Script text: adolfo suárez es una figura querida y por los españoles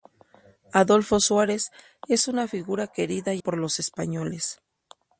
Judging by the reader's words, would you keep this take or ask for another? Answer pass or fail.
pass